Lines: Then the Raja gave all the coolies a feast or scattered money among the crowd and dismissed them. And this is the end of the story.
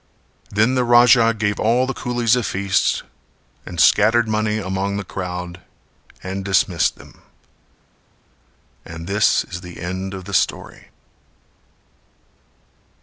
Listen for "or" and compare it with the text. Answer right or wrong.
wrong